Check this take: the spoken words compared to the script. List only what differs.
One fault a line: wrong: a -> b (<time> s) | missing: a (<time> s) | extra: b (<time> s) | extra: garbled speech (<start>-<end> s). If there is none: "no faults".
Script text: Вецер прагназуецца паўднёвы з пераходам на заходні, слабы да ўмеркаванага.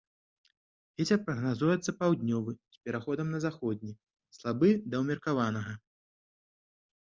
no faults